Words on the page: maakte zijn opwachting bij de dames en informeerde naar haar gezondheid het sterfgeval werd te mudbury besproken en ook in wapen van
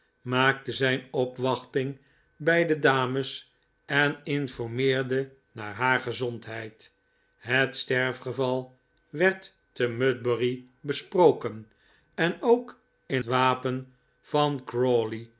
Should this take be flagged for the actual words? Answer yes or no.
no